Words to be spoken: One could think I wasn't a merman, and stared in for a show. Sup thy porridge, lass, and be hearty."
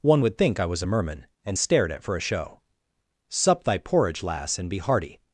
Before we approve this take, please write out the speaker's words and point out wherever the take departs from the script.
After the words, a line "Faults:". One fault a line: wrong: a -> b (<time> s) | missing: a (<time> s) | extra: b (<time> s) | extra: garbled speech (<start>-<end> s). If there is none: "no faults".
One would think I was a merman, and stared at for a show. Sup thy porridge, lass, and be hearty."
Faults:
wrong: could -> would (0.2 s)
wrong: wasn't -> was (0.6 s)
wrong: in -> at (1.9 s)